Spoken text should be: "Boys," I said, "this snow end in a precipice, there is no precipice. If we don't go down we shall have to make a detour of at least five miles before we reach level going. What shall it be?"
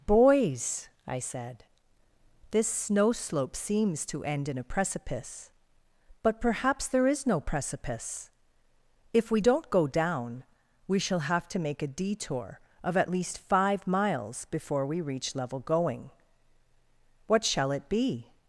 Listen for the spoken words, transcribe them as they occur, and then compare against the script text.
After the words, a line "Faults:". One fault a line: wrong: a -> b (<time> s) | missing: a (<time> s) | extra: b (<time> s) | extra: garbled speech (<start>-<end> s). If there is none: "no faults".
"Boys," I said, "this snow slope seems to end in a precipice, but perhaps there is no precipice. If we don't go down we shall have to make a detour of at least five miles before we reach level going. What shall it be?"
Faults:
extra: slope seems to (3.1 s)
extra: but perhaps (6.2 s)